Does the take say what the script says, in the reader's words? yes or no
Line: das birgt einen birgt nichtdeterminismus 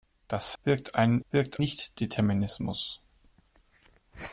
yes